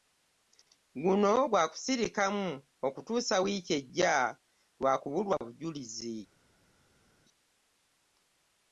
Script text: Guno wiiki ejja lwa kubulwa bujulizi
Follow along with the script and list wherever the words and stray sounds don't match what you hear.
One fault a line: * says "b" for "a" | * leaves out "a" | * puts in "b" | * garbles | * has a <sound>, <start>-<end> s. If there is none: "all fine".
* puts in "gwa kusirikamu okutuusa"